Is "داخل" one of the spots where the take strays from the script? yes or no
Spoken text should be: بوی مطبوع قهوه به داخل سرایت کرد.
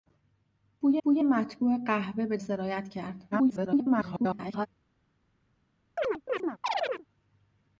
yes